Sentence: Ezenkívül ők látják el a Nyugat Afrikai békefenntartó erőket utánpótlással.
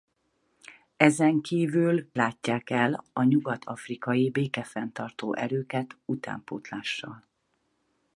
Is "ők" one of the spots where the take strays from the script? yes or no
yes